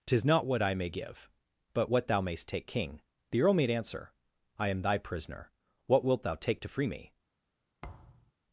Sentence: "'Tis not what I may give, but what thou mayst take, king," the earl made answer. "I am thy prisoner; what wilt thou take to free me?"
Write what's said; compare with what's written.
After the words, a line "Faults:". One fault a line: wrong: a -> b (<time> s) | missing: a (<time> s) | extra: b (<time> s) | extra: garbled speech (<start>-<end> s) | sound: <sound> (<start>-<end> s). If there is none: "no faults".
"'Tis not what I may give, but what thou mayst take, king," the earl made answer. "I am thy prisoner; what wilt thou take to free me?"
Faults:
sound: thud (7.8-8.3 s)